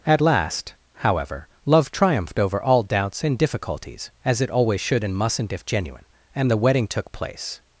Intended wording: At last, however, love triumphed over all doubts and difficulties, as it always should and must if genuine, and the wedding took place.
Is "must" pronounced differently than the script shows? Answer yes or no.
yes